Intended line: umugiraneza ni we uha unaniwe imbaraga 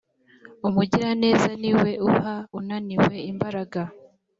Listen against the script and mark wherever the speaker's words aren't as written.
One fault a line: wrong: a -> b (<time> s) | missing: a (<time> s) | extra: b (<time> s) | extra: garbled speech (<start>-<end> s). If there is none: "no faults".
no faults